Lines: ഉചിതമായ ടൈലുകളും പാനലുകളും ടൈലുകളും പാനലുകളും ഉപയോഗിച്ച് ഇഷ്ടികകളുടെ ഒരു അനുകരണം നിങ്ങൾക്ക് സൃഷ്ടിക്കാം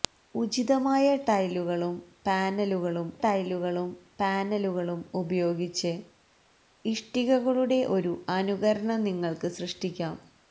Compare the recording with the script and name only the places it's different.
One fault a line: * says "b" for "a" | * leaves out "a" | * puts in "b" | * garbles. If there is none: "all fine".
all fine